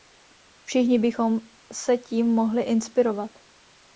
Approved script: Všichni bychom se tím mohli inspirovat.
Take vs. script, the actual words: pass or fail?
pass